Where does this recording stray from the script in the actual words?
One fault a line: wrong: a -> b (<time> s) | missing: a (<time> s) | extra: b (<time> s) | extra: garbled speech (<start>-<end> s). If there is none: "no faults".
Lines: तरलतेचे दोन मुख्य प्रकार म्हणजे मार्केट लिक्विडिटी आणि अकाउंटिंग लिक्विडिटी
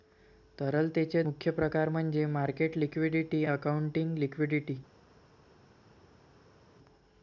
missing: दोन (1.2 s)
missing: आणि (3.4 s)